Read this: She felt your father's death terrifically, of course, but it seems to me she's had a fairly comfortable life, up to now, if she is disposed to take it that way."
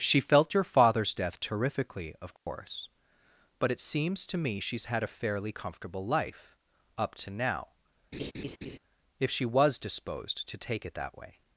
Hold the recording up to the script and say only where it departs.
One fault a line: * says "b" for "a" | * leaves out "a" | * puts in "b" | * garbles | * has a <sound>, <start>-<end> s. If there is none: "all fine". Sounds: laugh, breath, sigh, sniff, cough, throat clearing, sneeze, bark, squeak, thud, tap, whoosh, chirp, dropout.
* has a dropout, 2.4-2.5 s
* has a laugh, 8.1-8.8 s
* says "was" for "is"